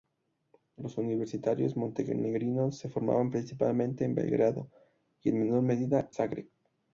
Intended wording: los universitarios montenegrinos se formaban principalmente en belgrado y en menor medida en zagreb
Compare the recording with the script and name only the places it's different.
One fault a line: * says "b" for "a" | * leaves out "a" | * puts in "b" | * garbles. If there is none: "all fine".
* leaves out "en"